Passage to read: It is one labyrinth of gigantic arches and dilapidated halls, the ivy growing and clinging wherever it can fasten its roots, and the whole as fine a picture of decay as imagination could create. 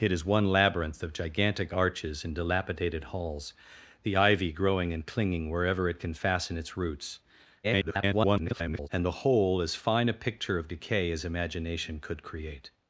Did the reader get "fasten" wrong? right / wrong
right